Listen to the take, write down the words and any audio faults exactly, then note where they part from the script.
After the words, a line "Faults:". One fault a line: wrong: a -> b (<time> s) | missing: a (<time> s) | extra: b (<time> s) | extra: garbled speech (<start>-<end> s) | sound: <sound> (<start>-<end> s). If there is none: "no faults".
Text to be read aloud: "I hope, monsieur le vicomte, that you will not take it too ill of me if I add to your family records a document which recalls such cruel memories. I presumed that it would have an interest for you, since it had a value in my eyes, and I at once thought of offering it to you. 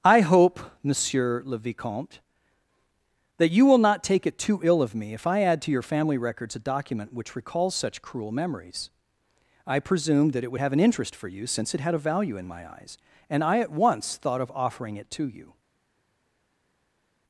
"I hope, monsieur le vicomte, that you will not take it too ill of me if I add to your family records a document which recalls such cruel memories. I presumed that it would have an interest for you, since it had a value in my eyes, and I at once thought of offering it to you.
Faults:
no faults